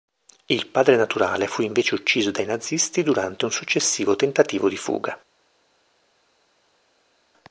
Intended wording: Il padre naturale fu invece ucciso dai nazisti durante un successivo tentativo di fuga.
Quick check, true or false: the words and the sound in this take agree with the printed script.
true